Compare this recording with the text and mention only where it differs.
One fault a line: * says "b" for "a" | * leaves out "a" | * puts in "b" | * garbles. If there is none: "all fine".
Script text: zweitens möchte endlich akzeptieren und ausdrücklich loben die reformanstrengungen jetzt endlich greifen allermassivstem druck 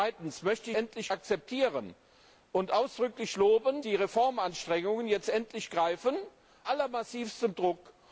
all fine